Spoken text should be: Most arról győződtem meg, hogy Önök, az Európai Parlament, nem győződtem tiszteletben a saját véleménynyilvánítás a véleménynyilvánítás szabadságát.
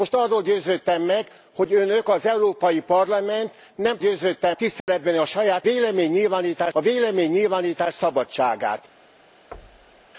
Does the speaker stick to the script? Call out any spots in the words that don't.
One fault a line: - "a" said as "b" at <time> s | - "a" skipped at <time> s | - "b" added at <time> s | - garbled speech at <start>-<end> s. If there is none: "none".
none